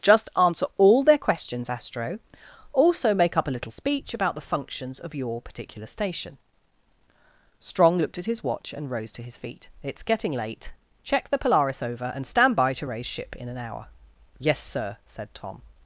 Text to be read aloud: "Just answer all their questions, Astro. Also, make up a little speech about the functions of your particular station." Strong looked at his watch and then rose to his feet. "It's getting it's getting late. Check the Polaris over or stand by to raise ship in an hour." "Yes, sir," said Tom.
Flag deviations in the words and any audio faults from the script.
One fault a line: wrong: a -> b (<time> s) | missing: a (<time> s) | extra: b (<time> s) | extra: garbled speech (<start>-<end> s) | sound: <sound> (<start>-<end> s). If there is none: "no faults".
missing: then (8.9 s)
missing: it's getting (10.3 s)
wrong: or -> and (12.1 s)